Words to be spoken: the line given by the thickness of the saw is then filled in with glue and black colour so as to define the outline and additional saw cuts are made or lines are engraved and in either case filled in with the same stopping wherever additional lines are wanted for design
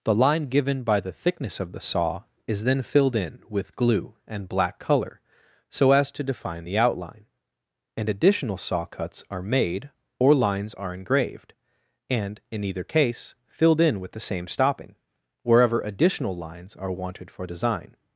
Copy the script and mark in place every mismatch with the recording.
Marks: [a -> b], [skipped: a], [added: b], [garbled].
the line given by the thickness of the saw is then filled in with glue and black colour so as to define the outline and additional saw cuts are made or lines are engraved and in either case filled in with the same stopping wherever additional lines are wanted for design